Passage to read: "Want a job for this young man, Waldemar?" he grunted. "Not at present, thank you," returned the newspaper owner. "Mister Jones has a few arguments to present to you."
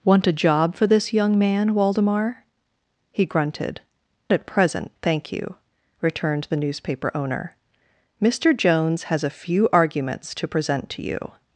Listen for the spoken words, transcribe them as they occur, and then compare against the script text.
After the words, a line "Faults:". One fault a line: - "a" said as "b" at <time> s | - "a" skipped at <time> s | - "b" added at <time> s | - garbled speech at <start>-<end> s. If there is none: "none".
"Want a job for this young man, Waldemar?" he grunted. "At present, thank you," returned the newspaper owner. "Mister Jones has a few arguments to present to you."
Faults:
- "Not" skipped at 3.8 s